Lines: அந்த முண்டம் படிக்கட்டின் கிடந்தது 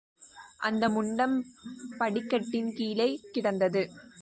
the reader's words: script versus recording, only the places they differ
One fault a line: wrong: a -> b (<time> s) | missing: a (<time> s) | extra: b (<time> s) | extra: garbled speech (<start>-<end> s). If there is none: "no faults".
extra: கீழே (2.7 s)